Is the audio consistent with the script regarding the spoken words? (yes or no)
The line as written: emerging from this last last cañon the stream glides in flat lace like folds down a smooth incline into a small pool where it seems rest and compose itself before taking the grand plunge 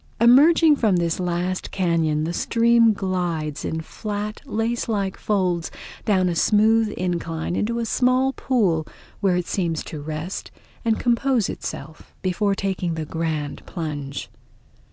no